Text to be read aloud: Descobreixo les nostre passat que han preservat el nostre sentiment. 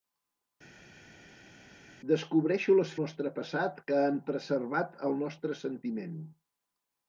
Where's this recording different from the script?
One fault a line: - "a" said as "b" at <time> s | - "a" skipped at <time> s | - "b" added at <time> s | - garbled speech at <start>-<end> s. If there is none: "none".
none